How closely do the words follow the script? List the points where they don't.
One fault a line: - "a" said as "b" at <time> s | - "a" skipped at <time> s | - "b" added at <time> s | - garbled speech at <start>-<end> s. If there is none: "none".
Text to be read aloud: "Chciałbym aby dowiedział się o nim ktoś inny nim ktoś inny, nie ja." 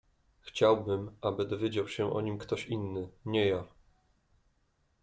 - "nim ktoś inny" skipped at 3.1 s